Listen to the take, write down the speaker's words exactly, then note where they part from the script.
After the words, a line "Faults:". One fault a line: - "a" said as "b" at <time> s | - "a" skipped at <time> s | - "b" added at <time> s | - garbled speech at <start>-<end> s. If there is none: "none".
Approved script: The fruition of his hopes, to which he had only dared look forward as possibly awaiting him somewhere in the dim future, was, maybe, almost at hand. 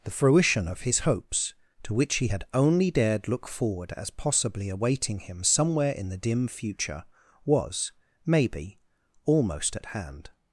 The fruition of his hopes, to which he had only dared look forward as possibly awaiting him somewhere in the dim future, was, maybe, almost at hand.
Faults:
none